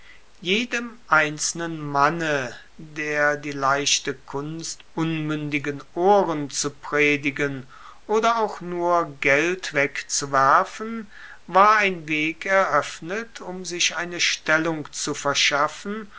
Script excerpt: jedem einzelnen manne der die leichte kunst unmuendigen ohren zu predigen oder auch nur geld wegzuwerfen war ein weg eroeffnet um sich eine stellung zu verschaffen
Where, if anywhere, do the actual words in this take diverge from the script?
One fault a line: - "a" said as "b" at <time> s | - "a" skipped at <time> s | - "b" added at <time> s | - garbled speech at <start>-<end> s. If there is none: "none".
none